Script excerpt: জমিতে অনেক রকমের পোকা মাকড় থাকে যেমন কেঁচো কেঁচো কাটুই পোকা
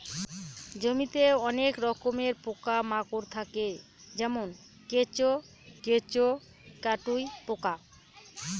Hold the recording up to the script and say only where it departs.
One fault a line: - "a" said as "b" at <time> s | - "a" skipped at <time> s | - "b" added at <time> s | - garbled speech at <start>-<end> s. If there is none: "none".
none